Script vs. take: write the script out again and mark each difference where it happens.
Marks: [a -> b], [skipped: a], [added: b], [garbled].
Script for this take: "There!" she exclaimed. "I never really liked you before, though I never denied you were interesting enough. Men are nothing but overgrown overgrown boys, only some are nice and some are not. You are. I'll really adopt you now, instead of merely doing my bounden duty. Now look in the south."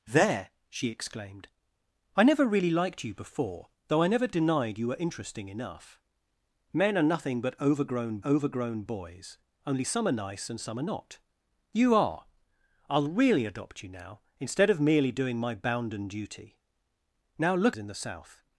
"There!" she exclaimed. "I never really liked you before, though I never denied you were interesting enough. Men are nothing but overgrown overgrown boys, only some are nice and some are not. You are. I'll really adopt you now, instead of merely doing my bounden duty. Now look in the south."